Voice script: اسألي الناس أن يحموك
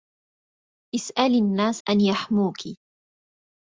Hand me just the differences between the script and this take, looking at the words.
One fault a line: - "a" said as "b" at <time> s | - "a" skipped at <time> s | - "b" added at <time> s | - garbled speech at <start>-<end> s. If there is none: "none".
none